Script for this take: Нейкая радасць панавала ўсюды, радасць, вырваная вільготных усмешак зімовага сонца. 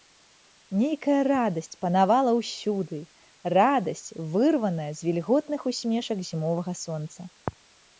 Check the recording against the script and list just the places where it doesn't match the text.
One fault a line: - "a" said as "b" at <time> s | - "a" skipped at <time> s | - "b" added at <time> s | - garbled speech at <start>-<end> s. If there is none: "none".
- "з" added at 5.0 s